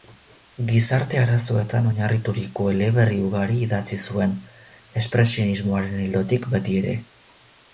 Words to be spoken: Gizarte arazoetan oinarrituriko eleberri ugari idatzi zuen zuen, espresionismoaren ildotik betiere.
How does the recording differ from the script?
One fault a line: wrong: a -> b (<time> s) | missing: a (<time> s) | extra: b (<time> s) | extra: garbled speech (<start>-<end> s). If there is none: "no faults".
missing: zuen (4.4 s)